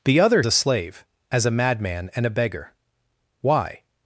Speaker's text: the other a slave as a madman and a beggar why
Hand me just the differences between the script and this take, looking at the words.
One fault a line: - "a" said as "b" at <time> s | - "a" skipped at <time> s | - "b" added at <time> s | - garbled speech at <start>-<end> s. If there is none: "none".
none